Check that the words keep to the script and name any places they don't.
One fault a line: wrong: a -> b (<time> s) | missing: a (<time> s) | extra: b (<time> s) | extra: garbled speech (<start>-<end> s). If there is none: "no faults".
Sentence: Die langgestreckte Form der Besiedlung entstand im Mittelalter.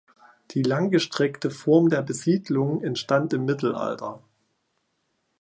no faults